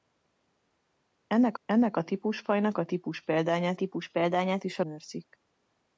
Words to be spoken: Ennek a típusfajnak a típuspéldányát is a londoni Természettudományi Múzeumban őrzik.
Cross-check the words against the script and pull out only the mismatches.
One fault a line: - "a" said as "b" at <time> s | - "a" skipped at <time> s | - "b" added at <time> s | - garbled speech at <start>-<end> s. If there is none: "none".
- "ennek" added at 1.7 s
- "típuspéldányát" added at 3.7 s
- "londoni Természettudományi Múzeumban" skipped at 4.8 s